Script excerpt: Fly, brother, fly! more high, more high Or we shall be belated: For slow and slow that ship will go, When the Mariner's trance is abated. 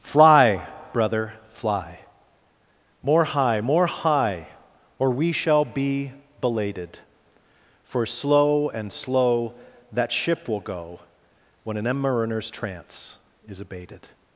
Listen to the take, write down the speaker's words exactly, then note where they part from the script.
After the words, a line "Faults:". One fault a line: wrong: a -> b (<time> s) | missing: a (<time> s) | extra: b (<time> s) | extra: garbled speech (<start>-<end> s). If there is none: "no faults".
Fly, brother, fly! more high, more high Or we shall be belated: For slow and slow that ship will go, When an Mariner's trance is abated.
Faults:
wrong: the -> an (11.8 s)